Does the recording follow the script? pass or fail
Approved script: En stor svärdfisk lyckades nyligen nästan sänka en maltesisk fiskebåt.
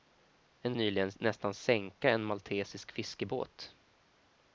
fail